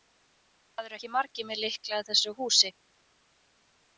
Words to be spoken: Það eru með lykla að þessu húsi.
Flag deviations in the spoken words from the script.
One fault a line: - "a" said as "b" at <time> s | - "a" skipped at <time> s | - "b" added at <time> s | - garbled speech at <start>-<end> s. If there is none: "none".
- "ekki margir" added at 0.9 s